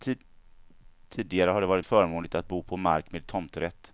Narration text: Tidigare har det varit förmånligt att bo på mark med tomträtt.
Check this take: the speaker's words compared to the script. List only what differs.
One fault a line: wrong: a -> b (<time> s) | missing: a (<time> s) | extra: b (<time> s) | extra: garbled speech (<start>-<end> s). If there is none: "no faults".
no faults